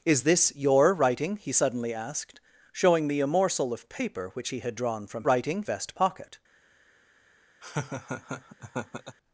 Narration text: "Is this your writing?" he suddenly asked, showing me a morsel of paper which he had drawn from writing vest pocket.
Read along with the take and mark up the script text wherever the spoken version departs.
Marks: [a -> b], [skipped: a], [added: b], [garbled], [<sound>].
"Is this your writing?" he suddenly asked, showing me a morsel of paper which he had drawn from writing vest pocket. [laugh]